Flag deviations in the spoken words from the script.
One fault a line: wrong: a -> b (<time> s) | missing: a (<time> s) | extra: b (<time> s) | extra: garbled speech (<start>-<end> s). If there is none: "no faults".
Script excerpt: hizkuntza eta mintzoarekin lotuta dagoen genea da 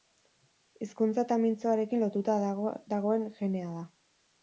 no faults